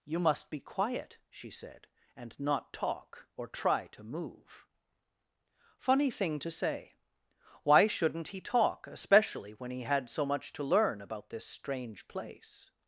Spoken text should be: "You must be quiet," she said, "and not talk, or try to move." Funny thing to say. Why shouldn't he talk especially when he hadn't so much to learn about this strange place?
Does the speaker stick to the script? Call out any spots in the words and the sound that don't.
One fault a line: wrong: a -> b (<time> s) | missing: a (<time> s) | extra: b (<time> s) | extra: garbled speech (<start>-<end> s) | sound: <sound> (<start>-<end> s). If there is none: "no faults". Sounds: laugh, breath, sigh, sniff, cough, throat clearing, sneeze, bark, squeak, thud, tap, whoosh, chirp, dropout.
wrong: hadn't -> had (9.8 s)